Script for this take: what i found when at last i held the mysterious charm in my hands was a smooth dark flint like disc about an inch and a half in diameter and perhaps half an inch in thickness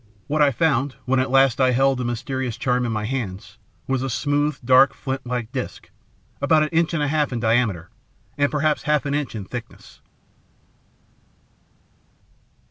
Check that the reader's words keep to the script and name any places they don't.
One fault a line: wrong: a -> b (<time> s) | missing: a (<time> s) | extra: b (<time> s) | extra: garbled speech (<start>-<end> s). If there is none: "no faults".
no faults